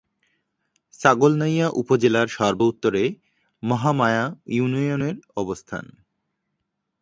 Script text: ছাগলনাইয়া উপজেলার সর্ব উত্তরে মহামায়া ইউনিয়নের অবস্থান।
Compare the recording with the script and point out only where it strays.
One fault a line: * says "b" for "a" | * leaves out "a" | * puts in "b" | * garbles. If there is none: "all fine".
all fine